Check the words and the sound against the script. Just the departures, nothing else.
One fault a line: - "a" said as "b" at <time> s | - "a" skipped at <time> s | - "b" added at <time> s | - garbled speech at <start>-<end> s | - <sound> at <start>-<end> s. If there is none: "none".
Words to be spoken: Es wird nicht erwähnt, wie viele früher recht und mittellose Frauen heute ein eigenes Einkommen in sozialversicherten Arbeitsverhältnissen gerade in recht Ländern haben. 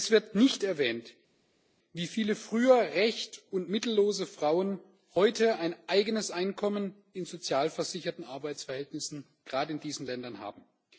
- "recht" said as "diesen" at 9.8 s